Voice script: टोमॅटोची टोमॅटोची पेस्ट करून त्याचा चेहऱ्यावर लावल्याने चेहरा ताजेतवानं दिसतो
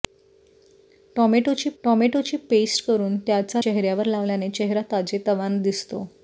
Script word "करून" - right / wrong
right